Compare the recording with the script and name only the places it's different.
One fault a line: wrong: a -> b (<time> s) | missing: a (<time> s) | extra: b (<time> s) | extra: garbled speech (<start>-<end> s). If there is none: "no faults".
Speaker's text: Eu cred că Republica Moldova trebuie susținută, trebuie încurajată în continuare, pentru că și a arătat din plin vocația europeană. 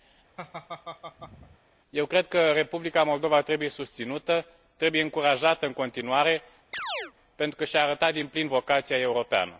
no faults